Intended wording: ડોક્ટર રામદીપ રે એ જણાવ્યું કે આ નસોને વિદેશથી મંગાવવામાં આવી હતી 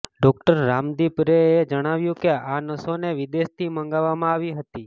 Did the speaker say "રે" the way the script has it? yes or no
yes